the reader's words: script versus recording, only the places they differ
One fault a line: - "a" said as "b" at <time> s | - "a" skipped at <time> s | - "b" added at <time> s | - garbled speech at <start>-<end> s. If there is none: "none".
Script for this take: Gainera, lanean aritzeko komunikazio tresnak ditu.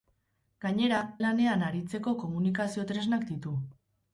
none